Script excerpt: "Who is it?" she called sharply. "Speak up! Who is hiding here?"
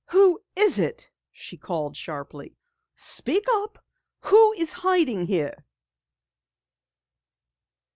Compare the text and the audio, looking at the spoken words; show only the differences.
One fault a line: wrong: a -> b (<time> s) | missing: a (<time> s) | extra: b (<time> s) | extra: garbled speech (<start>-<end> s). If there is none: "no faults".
no faults